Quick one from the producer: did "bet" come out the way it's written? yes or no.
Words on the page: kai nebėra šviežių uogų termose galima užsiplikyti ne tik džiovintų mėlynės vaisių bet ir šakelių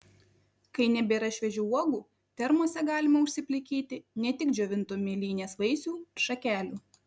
no